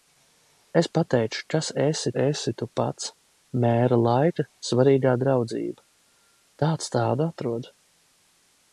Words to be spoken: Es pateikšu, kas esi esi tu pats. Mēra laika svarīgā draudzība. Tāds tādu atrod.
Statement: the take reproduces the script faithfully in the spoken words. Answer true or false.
true